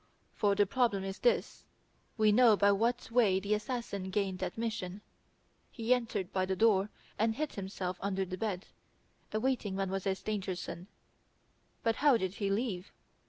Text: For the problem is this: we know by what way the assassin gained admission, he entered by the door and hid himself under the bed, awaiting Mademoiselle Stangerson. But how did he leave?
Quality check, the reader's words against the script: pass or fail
pass